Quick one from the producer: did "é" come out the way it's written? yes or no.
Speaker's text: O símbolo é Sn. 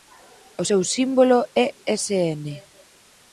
yes